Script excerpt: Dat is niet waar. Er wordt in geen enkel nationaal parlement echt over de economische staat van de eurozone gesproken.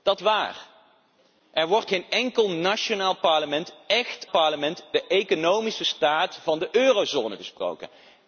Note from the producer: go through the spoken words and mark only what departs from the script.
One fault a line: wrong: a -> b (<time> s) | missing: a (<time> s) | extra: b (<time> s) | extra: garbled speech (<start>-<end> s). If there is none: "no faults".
missing: is niet (0.2 s)
missing: in (1.9 s)
wrong: over -> parlement (4.3 s)